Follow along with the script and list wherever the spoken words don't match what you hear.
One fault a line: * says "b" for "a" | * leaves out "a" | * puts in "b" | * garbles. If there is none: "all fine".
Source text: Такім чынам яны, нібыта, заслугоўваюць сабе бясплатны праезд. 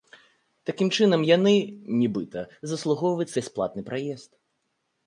* leaves out "сабе"